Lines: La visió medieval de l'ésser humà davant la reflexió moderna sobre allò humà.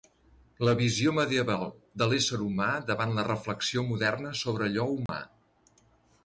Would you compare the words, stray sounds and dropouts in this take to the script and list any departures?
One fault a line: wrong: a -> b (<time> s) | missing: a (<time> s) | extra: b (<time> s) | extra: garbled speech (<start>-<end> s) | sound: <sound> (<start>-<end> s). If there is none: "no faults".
sound: dropout (5.1-5.1 s)